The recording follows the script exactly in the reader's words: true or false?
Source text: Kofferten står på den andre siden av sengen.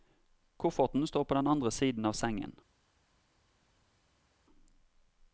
true